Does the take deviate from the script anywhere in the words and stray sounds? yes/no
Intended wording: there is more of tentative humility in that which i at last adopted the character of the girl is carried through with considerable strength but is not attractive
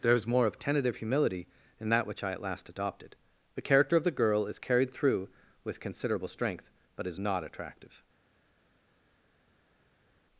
no